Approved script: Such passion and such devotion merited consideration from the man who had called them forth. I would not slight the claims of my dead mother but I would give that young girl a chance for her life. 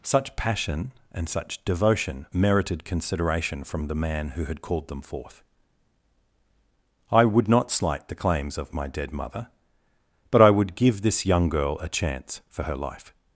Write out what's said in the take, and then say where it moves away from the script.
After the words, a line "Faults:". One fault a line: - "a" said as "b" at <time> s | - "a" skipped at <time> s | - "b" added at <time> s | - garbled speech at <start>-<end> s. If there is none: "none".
Such passion and such devotion merited consideration from the man who had called them forth. I would not slight the claims of my dead mother but I would give this young girl a chance for her life.
Faults:
- "that" said as "this" at 11.0 s